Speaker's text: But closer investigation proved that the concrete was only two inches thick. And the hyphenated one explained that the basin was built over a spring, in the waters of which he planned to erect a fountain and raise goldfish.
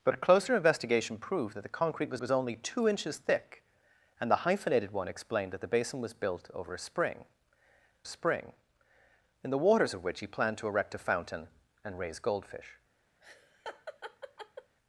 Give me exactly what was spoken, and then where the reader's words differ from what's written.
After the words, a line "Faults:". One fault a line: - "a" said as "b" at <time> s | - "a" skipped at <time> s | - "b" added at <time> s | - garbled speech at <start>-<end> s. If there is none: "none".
But closer investigation proved that the concrete was was only two inches thick. And the hyphenated one explained that the basin was built over a spring spring, in the waters of which he planned to erect a fountain and raise goldfish.
Faults:
- "was" added at 2.2 s
- "spring" added at 8.0 s